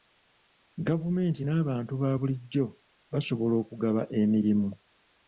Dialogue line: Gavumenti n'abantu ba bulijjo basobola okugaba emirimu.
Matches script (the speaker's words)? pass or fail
pass